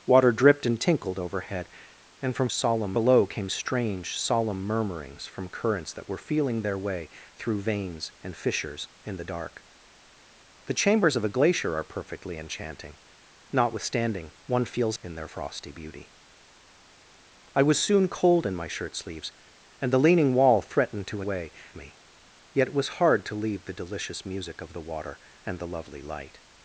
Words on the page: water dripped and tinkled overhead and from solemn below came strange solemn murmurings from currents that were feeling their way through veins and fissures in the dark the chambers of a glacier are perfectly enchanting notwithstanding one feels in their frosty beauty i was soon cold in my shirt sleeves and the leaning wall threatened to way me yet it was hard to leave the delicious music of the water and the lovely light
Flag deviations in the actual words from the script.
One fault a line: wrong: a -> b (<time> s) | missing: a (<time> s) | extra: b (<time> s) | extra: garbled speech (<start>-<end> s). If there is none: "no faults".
no faults